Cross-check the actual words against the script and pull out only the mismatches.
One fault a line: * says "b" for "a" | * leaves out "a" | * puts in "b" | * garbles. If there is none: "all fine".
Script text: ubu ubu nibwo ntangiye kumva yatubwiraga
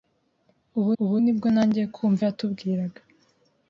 all fine